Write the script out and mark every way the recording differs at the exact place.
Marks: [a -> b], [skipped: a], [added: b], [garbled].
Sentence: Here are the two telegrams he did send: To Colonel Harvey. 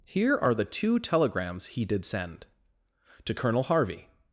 Here are the two telegrams he did send: To Colonel Harvey.